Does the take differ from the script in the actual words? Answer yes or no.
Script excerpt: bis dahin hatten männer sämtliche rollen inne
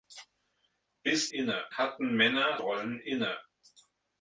yes